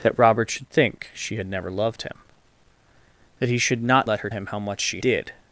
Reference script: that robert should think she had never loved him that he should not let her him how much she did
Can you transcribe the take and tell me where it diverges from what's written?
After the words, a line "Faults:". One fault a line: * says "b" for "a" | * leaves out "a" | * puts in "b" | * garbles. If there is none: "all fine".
that robert should think she had never loved him that he should not let her him how much she did
Faults:
all fine